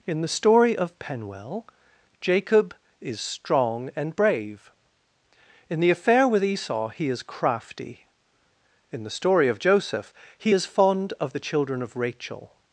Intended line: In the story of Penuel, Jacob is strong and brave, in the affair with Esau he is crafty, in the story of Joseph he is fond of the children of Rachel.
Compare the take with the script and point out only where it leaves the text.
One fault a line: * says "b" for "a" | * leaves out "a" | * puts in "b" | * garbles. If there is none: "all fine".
all fine